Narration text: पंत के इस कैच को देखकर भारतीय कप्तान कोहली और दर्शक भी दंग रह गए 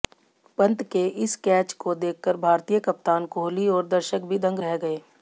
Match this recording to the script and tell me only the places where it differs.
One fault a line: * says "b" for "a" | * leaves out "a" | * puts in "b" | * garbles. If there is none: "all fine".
all fine